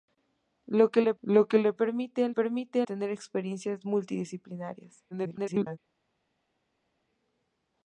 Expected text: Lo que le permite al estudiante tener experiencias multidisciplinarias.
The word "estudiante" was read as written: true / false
false